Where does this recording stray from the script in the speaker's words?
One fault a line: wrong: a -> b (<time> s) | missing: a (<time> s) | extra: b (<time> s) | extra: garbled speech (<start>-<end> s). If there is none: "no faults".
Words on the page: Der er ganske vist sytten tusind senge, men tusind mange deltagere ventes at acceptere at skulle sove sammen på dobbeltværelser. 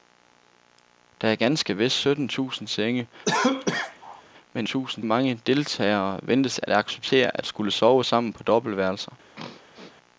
no faults